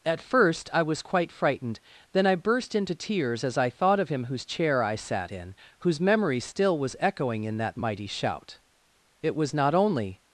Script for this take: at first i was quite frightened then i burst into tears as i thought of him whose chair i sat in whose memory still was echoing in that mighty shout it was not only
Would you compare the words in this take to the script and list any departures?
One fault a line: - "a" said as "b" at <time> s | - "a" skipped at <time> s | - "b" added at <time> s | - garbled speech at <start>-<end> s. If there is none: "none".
none